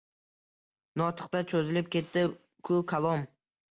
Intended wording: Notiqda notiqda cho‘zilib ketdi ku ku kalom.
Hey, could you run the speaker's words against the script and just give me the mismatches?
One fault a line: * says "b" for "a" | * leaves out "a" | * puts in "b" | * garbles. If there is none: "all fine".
* leaves out "notiqda"
* leaves out "ku"